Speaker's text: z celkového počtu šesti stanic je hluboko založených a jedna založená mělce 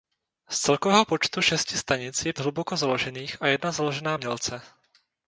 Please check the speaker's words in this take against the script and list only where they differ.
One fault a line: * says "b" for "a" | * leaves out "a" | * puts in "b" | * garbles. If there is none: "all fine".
all fine